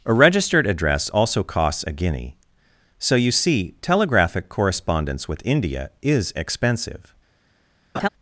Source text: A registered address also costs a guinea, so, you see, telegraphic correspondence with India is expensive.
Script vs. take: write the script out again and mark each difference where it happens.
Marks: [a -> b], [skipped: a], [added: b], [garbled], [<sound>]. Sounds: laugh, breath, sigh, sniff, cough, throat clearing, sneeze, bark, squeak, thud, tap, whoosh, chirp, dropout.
A registered address also costs a guinea, so, you see, telegraphic correspondence with India is expensive. [laugh]